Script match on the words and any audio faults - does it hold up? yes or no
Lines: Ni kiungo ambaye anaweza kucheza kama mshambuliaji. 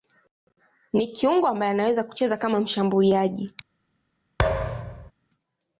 no